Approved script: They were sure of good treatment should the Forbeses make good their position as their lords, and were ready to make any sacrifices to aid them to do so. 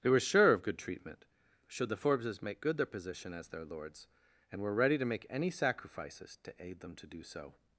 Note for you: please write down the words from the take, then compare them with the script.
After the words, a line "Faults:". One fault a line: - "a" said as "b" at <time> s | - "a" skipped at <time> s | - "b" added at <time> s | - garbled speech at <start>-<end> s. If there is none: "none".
They were sure of good treatment should the Forbeses make good their position as their lords, and were ready to make any sacrifices to aid them to do so.
Faults:
none